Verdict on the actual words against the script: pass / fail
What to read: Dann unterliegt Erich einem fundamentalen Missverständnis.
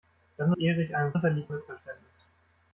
fail